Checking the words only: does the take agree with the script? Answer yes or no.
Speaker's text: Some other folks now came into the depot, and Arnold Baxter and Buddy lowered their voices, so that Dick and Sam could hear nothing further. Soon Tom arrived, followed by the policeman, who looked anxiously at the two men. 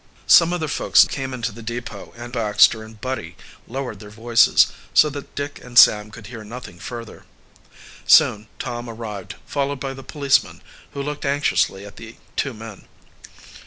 no